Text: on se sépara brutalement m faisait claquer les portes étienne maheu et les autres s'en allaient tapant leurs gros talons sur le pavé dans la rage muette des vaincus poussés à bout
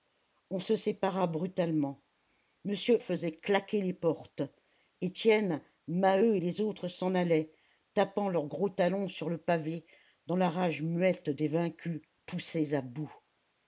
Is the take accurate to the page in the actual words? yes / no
yes